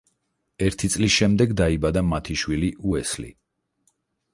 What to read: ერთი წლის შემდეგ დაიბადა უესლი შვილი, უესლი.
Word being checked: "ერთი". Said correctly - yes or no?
yes